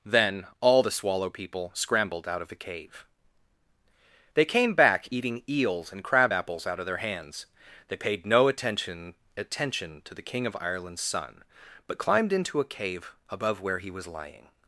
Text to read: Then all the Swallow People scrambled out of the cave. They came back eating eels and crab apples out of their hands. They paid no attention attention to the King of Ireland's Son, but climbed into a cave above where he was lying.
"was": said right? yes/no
yes